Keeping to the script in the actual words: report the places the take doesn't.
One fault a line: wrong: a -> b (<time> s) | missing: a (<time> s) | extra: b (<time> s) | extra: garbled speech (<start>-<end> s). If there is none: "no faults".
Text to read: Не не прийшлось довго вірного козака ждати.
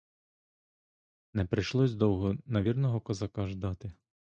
missing: не (1.4 s)
extra: на (2.5 s)